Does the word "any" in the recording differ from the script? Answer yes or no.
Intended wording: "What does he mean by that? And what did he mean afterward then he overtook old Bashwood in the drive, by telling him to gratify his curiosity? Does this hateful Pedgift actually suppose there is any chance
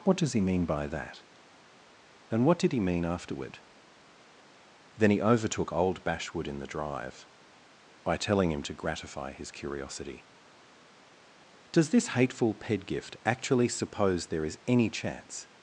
no